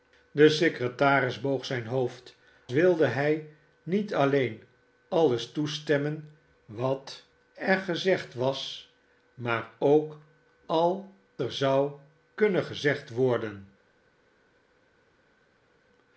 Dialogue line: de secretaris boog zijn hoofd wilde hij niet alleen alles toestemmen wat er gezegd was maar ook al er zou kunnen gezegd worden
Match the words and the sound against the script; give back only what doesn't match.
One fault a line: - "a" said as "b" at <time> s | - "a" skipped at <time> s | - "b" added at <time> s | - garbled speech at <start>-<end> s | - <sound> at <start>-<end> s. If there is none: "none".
none